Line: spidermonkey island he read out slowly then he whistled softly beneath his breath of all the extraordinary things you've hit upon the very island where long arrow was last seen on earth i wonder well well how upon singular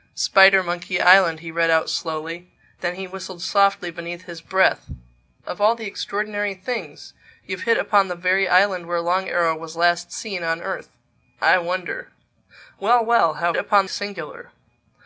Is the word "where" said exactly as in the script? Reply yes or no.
yes